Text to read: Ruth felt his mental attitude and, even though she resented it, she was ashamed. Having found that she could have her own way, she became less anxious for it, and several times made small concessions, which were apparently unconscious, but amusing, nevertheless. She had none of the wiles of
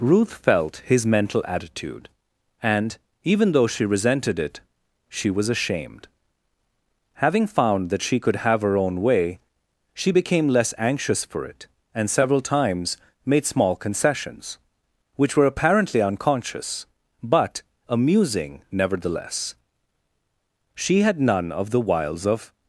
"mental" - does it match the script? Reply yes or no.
yes